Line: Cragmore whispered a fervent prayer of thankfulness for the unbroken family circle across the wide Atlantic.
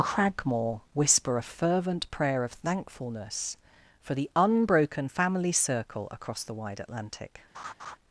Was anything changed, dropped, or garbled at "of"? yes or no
no